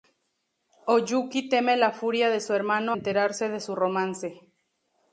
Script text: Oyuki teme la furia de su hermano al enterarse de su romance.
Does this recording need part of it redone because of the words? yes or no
yes